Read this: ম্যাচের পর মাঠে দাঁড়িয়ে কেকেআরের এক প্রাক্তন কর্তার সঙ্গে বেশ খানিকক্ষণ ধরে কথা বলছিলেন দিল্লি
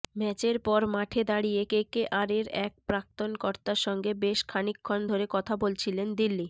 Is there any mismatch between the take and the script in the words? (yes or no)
no